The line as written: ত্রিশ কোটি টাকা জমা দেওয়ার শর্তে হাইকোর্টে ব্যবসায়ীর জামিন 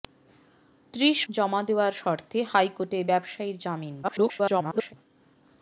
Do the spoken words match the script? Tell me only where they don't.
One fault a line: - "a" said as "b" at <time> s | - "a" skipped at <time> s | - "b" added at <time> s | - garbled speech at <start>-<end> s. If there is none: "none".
- "কোটি টাকা" skipped at 1.2 s
- garbled speech at 4.0-4.9 s